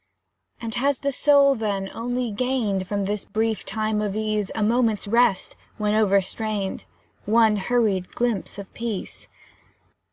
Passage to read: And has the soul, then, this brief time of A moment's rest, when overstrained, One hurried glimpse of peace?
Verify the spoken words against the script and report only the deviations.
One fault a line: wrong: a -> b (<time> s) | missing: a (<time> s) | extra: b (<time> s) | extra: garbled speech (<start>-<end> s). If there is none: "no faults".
extra: only gained From (1.9 s)
extra: ease (4.2 s)